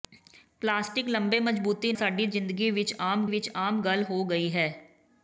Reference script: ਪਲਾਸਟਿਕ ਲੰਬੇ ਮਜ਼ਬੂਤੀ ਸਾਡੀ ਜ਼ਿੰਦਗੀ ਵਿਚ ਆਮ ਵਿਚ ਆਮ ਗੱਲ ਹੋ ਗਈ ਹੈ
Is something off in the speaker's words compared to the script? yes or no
no